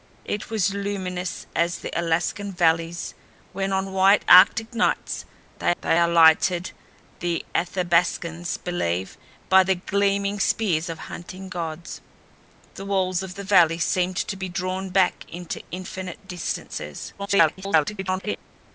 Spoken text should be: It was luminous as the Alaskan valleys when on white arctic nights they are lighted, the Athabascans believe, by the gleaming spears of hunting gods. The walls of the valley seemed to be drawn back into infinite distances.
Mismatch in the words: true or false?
true